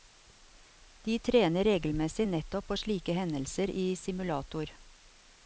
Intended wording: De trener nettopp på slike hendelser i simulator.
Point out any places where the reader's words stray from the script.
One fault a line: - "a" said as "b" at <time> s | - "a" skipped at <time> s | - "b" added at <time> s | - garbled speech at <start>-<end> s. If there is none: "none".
- "regelmessig" added at 1.6 s